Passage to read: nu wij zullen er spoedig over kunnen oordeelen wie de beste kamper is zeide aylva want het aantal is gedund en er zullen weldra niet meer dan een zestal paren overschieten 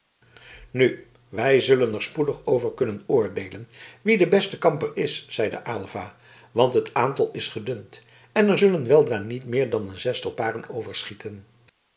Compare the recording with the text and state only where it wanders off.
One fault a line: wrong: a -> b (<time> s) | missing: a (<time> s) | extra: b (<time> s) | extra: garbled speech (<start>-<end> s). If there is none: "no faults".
no faults